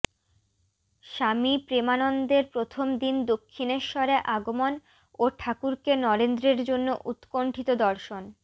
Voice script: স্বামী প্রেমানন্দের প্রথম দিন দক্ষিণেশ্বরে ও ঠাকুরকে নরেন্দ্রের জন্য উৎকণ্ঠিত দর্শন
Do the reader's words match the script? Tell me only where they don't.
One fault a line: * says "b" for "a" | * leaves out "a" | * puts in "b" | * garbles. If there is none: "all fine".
* puts in "আগমন"